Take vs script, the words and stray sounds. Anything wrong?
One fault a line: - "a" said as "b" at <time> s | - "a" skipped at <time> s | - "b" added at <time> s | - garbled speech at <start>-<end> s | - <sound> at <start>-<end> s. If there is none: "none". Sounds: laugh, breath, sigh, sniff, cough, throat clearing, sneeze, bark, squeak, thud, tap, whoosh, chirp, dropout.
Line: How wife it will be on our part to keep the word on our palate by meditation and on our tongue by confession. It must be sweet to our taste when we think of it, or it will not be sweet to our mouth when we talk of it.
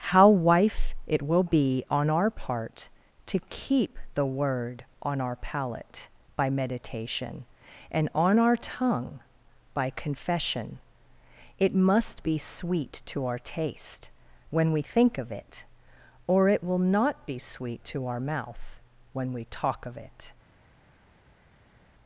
none